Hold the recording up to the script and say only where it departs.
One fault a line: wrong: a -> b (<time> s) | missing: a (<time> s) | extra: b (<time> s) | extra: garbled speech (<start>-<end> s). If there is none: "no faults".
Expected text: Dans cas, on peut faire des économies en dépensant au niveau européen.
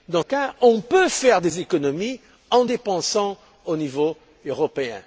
no faults